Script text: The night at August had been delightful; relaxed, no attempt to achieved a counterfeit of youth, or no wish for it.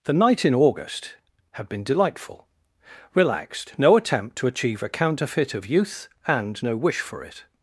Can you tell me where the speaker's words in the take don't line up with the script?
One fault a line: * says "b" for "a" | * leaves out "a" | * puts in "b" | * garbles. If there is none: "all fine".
* says "in" for "at"
* says "achieve" for "achieved"
* says "and" for "or"